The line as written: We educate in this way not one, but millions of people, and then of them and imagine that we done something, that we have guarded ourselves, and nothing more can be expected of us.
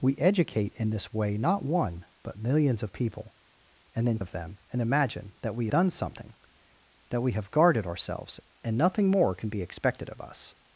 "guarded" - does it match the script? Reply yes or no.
yes